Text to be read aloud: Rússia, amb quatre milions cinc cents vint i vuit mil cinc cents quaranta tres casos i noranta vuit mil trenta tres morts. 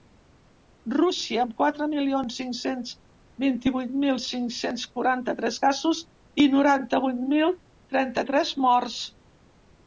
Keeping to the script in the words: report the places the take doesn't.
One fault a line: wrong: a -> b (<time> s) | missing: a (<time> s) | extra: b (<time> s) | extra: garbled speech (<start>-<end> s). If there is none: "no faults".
no faults